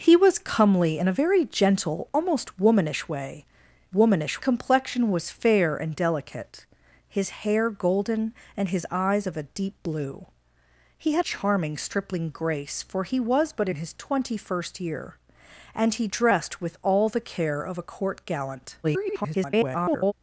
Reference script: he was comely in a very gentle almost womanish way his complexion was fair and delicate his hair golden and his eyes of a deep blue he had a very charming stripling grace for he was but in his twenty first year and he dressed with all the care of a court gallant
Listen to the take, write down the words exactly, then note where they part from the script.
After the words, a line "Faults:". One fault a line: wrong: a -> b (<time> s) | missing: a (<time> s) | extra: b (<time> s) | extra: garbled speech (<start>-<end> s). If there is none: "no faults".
he was comely in a very gentle almost womanish way womanish complexion was fair and delicate his hair golden and his eyes of a deep blue he had charming stripling grace for he was but in his twenty first year and he dressed with all the care of a court gallant [garbled]
Faults:
wrong: his -> womanish (3.9 s)
missing: a very (11.3 s)
extra: garbled speech (18.8-20.1 s)